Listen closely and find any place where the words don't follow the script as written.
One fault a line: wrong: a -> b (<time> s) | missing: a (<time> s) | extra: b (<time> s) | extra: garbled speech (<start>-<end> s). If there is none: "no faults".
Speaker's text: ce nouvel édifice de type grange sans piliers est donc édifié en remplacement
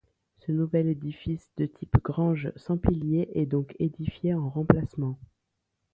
no faults